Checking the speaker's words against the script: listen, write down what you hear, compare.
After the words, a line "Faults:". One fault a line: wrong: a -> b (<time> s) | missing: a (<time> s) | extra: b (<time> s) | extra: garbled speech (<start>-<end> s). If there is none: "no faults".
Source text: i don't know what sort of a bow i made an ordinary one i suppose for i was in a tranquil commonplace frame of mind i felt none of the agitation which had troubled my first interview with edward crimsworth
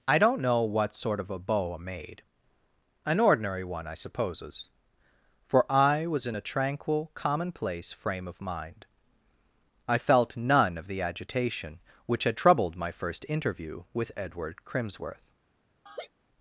i don't know what sort of a bow i made an ordinary one i supposes for i was in a tranquil commonplace frame of mind i felt none of the agitation which had troubled my first interview with edward crimsworth
Faults:
wrong: suppose -> supposes (3.9 s)